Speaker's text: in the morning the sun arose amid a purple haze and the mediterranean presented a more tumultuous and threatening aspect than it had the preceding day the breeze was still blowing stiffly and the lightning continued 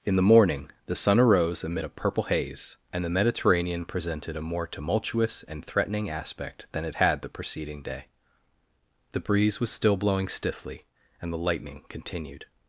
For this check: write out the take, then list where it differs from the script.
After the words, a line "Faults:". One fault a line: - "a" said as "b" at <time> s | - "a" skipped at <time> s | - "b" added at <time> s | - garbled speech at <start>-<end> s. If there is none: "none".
in the morning the sun arose amid a purple haze and the mediterranean presented a more tumultuous and threatening aspect than it had the preceding day the breeze was still blowing stiffly and the lightning continued
Faults:
none